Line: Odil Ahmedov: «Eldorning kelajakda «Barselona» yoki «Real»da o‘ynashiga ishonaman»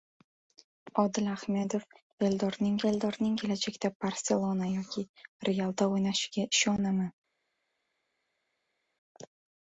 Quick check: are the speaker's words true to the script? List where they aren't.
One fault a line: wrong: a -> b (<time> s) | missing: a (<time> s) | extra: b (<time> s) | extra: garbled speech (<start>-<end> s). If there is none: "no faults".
extra: eldorning (2.9 s)